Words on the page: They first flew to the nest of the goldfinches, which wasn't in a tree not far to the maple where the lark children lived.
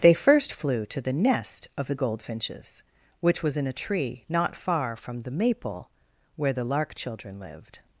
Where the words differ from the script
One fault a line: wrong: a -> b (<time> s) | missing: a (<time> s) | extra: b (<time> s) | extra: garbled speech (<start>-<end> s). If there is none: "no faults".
wrong: wasn't -> was (3.4 s)
wrong: to -> from (5.0 s)